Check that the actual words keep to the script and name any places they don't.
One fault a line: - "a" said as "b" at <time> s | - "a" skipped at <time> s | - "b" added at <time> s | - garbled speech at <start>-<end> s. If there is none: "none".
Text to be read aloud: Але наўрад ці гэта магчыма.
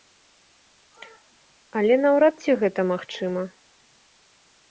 none